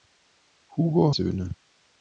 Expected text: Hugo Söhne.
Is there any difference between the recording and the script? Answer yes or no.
no